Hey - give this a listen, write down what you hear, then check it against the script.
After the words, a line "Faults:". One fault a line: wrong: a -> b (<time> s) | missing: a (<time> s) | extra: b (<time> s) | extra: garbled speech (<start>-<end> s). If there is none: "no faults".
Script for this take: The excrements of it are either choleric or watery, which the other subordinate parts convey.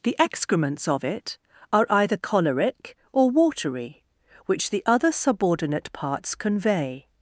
The excrements of it are either choleric or watery, which the other subordinate parts convey.
Faults:
no faults